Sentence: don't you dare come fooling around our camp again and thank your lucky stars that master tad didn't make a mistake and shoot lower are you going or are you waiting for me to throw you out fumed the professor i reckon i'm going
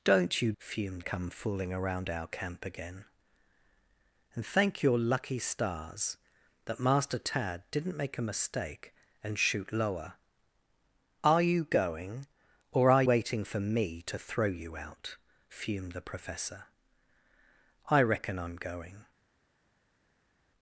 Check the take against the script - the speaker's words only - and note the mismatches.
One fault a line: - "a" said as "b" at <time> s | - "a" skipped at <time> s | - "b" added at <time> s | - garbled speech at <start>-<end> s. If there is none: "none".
- "dare" said as "fumed" at 0.6 s
- "you" skipped at 13.0 s